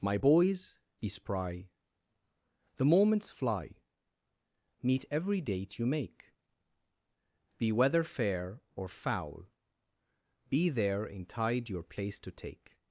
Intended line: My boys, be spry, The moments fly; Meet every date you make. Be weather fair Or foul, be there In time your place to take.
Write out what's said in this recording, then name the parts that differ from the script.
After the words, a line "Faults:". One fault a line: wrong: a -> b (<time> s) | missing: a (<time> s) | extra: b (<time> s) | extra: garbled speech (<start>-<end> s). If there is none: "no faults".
My boys, be spry, The moments fly; Meet every date you make. Be weather fair Or foul, be there In tide your place to take.
Faults:
wrong: time -> tide (11.2 s)